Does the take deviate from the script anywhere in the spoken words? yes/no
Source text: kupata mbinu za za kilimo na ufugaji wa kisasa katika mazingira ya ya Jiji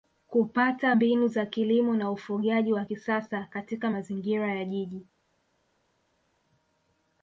yes